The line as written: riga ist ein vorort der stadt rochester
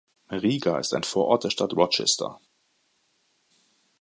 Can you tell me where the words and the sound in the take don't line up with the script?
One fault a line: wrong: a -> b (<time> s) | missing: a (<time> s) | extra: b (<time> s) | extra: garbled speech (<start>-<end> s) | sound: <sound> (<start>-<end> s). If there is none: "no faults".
no faults